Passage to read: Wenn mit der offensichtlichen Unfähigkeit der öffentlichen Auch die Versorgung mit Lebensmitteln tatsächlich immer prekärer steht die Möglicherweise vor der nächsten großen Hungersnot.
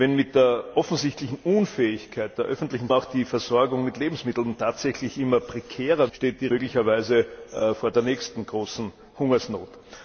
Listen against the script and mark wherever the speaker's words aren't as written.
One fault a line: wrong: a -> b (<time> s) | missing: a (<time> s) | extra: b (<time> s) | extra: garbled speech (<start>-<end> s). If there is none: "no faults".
no faults